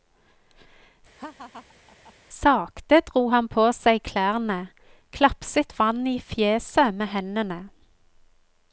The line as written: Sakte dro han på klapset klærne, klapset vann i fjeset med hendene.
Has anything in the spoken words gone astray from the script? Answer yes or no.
yes